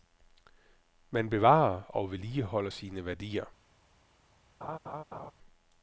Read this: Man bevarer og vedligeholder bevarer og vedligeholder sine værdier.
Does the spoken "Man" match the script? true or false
true